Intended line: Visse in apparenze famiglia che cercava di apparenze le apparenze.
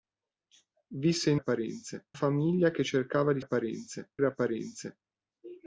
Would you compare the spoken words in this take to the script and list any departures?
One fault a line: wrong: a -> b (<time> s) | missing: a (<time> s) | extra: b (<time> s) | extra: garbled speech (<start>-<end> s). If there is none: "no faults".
no faults